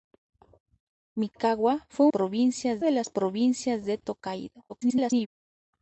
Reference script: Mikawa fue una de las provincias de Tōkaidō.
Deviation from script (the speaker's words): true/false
true